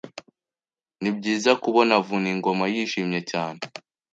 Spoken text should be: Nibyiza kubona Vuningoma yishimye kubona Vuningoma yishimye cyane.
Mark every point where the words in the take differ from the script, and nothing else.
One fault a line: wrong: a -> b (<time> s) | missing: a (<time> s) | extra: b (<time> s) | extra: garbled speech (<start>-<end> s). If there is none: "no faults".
missing: kubona Vuningoma yishimye (3.2 s)